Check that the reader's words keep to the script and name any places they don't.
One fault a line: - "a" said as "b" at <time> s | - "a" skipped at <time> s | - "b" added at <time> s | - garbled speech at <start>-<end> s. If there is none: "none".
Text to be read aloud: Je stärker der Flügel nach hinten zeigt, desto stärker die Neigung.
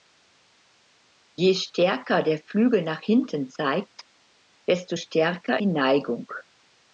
none